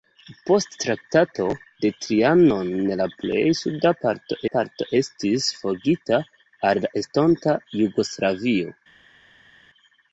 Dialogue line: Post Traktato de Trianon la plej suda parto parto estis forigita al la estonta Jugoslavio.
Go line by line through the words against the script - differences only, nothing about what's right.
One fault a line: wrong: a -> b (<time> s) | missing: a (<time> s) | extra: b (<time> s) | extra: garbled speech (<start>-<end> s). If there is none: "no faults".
no faults